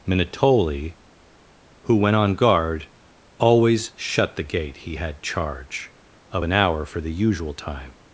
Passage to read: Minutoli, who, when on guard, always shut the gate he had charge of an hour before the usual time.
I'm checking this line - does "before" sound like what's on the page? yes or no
no